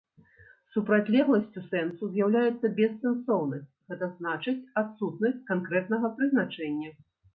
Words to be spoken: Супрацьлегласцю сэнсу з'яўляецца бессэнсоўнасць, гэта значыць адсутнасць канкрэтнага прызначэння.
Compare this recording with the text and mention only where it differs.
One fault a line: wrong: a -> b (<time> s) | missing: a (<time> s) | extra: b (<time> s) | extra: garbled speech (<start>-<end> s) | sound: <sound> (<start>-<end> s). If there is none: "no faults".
no faults